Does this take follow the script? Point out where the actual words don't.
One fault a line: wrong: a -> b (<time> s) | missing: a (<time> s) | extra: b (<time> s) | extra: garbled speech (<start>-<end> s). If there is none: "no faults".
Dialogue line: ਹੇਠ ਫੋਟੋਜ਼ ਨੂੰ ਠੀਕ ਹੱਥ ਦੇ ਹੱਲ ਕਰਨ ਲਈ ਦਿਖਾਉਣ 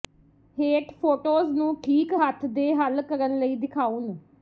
no faults